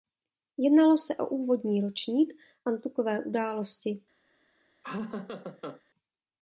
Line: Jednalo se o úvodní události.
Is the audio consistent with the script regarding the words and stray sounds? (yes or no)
no